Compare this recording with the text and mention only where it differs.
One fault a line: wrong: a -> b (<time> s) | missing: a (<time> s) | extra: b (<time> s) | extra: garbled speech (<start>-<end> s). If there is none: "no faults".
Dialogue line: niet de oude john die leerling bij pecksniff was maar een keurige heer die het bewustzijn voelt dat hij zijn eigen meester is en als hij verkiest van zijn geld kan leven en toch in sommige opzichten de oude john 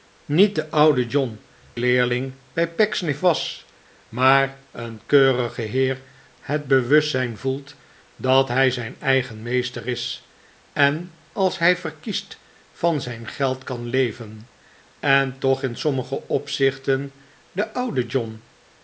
missing: die (1.4 s)
missing: die (6.0 s)